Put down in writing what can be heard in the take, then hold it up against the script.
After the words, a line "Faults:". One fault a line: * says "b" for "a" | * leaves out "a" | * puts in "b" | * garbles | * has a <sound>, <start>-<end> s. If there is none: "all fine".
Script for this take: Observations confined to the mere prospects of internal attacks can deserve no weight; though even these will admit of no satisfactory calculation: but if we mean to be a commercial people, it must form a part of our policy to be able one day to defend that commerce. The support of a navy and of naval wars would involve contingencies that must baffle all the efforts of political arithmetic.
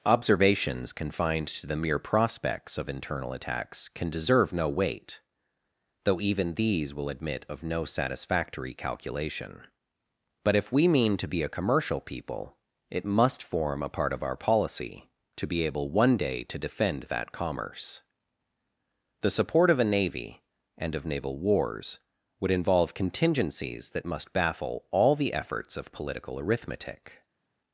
Observations confined to the mere prospects of internal attacks can deserve no weight; though even these will admit of no satisfactory calculation: but if we mean to be a commercial people, it must form a part of our policy to be able one day to defend that commerce. The support of a navy and of naval wars would involve contingencies that must baffle all the efforts of political arithmetic.
Faults:
all fine